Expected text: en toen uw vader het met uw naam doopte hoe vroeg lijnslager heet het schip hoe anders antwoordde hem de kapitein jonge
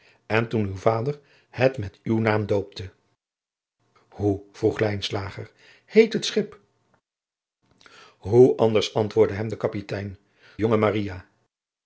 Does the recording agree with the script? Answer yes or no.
yes